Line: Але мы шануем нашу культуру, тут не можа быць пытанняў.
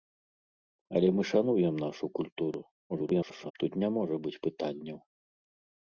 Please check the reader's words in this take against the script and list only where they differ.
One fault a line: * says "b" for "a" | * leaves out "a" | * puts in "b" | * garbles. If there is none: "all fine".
* garbles